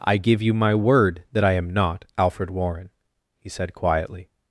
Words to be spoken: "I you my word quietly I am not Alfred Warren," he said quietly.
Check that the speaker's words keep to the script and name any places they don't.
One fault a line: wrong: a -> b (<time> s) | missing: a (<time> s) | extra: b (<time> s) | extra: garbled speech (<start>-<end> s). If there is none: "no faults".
extra: give (0.2 s)
wrong: quietly -> that (1.3 s)